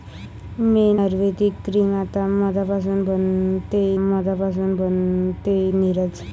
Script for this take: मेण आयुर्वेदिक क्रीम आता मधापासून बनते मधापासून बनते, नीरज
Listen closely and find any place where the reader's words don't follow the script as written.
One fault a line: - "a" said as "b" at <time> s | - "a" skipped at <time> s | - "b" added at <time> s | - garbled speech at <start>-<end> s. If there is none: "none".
none